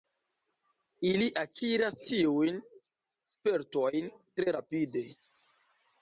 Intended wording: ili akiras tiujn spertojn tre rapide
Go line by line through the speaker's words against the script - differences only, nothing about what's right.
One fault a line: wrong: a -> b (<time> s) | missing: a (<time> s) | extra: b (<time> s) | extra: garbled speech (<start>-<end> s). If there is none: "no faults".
no faults